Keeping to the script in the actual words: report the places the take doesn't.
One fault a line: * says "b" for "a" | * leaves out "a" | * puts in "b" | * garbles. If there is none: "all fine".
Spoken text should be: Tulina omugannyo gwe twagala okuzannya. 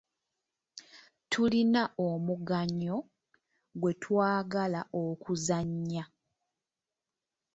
all fine